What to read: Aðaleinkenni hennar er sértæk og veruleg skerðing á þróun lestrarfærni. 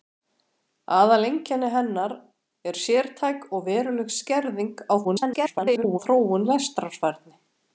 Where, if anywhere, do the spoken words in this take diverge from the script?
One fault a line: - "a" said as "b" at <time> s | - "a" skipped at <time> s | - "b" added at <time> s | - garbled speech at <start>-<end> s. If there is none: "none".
- garbled speech at 5.0-6.0 s